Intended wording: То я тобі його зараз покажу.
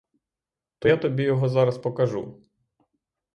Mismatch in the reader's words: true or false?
false